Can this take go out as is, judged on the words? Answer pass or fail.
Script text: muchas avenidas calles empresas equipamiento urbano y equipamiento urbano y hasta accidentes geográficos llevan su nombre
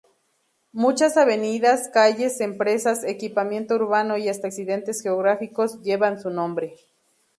fail